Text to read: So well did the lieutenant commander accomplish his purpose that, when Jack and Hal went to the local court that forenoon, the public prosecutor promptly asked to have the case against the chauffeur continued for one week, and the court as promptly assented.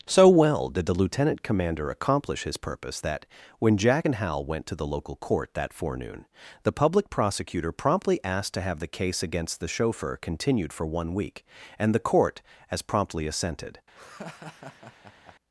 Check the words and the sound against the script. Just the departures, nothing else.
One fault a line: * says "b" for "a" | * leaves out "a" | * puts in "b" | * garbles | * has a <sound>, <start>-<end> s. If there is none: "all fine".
* has a laugh, 13.9-15.4 s